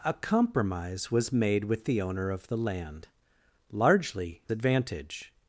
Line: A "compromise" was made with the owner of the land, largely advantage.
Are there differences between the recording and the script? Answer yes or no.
no